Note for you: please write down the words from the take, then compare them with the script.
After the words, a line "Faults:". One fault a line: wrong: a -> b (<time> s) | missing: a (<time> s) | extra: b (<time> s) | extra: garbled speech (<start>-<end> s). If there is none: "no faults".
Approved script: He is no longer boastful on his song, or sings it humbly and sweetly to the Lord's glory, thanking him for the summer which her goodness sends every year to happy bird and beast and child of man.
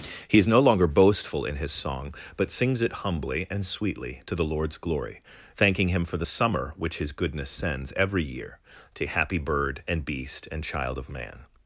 He is no longer boastful in his song, but sings it humbly and sweetly to the Lord's glory, thanking him for the summer which his goodness sends every year to happy bird and beast and child of man.
Faults:
wrong: on -> in (1.4 s)
wrong: or -> but (2.4 s)
wrong: her -> his (7.0 s)